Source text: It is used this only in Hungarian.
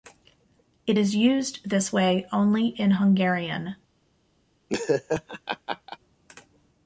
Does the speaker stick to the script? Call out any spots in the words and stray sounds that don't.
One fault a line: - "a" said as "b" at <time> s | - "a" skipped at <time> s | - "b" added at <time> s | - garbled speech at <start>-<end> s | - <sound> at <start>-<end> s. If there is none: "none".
- "way" added at 1.9 s
- laugh at 4.7-6.0 s